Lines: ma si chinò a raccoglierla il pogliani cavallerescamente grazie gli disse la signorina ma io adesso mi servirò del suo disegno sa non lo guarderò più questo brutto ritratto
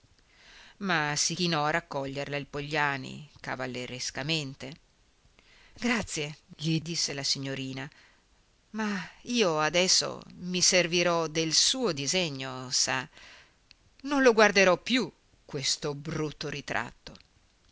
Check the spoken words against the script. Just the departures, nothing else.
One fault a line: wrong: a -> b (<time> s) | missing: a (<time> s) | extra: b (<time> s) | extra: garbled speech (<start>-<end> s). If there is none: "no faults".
no faults